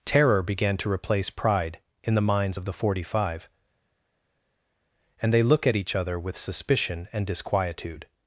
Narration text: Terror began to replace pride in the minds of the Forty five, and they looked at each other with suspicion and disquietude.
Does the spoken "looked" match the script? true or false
false